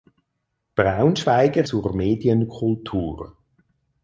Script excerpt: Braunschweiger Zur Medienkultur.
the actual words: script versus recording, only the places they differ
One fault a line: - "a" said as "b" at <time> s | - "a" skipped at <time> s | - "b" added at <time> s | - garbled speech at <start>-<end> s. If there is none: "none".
none